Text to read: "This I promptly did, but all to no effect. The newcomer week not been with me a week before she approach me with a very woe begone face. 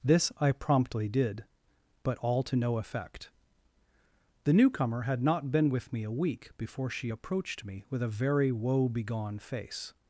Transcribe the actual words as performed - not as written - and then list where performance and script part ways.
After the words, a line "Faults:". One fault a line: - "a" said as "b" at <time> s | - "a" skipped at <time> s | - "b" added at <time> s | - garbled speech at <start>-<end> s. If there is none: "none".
"This I promptly did, but all to no effect. The newcomer had not been with me a week before she approached me with a very woe begone face.
Faults:
- "week" said as "had" at 5.0 s
- "approach" said as "approached" at 7.1 s